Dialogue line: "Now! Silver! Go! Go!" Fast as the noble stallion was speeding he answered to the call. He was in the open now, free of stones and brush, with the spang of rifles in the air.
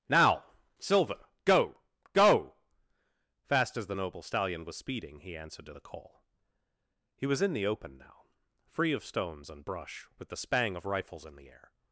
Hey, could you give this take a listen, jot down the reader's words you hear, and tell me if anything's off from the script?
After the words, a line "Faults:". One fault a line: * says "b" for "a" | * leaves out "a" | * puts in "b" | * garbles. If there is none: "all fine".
"Now! Silver! Go! Go!" Fast as the noble stallion was speeding he answered to the call. He was in the open now, free of stones and brush, with the spang of rifles in the air.
Faults:
all fine